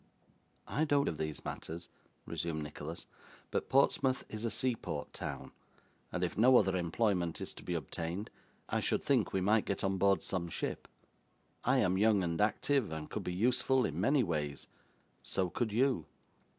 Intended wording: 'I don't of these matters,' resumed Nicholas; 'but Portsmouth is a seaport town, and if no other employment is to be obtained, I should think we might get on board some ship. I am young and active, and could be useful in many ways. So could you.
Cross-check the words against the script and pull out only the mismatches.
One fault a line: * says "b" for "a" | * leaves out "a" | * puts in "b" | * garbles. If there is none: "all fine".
all fine